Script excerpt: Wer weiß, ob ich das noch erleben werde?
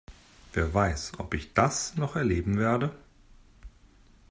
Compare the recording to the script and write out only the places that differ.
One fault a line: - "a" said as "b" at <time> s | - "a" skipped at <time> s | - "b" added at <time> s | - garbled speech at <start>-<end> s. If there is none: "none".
none